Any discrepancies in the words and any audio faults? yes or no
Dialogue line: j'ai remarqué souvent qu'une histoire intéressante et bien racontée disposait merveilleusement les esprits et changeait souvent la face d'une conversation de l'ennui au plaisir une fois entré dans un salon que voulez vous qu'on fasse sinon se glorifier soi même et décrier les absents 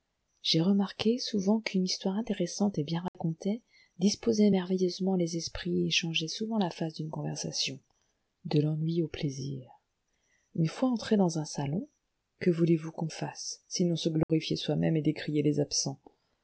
yes